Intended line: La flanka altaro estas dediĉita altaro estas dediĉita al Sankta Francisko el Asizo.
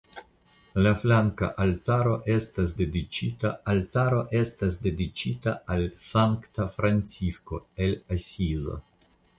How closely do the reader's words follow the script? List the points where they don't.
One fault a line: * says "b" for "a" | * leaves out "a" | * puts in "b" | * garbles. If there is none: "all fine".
all fine